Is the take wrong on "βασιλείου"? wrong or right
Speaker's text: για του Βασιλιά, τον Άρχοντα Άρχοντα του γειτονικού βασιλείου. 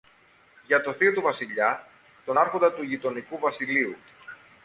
right